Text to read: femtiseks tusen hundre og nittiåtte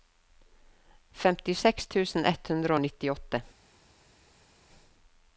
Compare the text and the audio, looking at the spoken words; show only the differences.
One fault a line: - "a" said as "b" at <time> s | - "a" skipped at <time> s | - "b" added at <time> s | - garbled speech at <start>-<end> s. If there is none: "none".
- "ett" added at 2.3 s